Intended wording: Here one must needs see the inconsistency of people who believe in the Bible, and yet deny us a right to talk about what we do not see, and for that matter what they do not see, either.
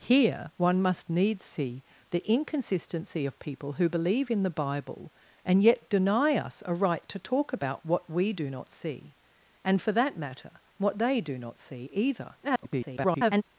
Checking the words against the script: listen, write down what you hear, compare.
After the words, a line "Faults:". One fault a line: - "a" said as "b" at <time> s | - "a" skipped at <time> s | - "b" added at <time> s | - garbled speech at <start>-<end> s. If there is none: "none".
Here one must needs see the inconsistency of people who believe in the Bible, and yet deny us a right to talk about what we do not see, and for that matter what they do not see, either. [garbled]
Faults:
- garbled speech at 12.4-13.4 s